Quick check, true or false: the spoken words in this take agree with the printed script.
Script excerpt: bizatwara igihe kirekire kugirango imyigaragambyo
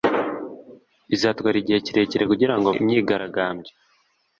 true